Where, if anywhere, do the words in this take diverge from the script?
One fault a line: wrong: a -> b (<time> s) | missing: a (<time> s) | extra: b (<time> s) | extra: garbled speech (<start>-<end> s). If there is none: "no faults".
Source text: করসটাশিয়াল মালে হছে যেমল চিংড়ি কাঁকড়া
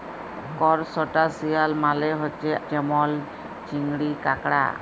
no faults